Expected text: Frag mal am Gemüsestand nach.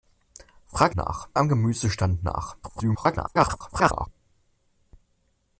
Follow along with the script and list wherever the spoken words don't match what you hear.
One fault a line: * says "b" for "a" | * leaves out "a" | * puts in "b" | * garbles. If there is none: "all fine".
* says "nach" for "mal"
* garbles